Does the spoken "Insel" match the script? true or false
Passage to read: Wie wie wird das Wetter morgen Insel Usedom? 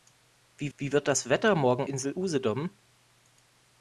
true